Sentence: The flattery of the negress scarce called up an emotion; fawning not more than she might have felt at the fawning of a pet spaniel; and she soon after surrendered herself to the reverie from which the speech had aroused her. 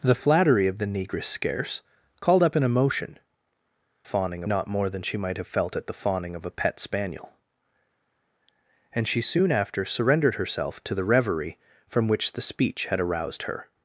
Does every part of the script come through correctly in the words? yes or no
yes